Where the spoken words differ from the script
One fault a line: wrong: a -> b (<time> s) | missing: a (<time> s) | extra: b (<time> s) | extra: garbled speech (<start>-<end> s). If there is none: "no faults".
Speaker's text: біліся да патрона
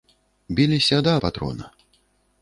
no faults